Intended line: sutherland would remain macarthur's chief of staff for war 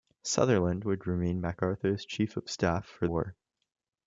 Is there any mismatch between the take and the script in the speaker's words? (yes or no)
no